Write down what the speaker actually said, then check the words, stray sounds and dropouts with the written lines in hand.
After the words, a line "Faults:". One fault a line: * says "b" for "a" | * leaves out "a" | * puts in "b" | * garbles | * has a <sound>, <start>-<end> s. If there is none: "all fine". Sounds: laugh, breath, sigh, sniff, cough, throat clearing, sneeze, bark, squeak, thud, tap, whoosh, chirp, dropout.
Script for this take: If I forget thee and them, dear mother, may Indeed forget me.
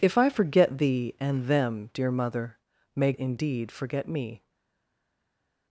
If I forget thee and them, dear mother, may Indeed forget me.
Faults:
all fine